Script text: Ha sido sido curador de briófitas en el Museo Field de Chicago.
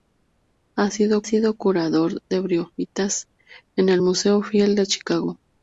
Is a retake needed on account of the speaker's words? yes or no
no